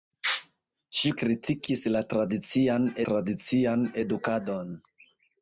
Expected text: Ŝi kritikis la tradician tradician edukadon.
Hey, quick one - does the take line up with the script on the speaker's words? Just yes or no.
yes